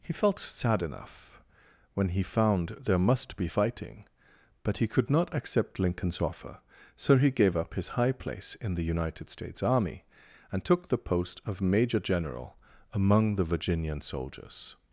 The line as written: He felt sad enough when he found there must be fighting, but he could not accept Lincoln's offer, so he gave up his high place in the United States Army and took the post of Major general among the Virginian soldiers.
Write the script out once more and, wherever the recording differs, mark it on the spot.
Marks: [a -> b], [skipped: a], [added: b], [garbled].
He felt sad enough when he found there must be fighting, but he could not accept Lincoln's offer, so he gave up his high place in the United States Army and took the post of Major general among the Virginian soldiers.